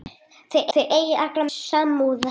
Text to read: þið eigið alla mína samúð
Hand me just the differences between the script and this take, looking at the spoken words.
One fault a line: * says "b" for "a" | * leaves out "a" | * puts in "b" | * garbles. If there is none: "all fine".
* puts in "þið"
* leaves out "mína"